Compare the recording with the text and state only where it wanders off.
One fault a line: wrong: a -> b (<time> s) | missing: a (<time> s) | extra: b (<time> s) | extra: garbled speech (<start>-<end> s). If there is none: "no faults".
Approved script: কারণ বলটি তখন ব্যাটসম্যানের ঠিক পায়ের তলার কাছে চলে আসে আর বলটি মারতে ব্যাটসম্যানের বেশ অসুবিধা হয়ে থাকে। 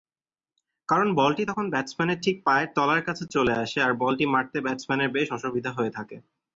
no faults